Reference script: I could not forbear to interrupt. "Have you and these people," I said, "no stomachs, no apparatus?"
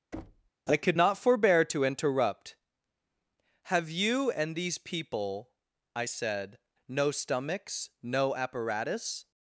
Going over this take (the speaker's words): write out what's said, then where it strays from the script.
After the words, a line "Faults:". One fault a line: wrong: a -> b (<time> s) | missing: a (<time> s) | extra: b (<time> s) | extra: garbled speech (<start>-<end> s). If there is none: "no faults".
I could not forbear to interrupt. "Have you and these people," I said, "no stomachs, no apparatus?"
Faults:
no faults